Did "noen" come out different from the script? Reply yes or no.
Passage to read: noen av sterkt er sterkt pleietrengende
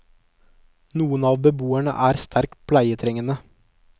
no